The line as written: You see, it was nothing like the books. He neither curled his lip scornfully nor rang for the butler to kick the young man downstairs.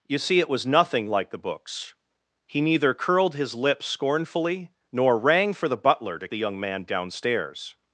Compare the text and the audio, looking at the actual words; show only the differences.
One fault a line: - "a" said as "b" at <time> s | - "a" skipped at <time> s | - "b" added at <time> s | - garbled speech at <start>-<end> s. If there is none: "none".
- "kick" skipped at 6.3 s